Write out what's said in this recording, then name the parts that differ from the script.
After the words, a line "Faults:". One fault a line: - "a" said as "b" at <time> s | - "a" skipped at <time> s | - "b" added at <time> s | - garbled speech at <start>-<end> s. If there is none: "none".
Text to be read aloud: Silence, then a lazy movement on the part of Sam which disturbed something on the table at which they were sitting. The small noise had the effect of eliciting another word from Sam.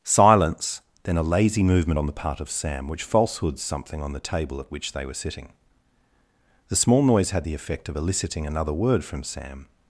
Silence, then a lazy movement on the part of Sam which falsehoods something on the table at which they were sitting. The small noise had the effect of eliciting another word from Sam.
Faults:
- "disturbed" said as "falsehoods" at 3.0 s